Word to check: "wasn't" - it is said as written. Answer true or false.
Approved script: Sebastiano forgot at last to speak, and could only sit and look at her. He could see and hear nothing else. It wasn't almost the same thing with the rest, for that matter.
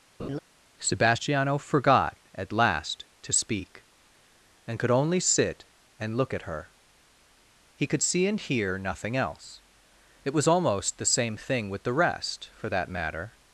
false